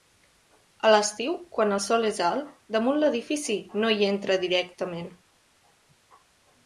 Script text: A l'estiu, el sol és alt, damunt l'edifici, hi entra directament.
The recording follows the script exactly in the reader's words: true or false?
false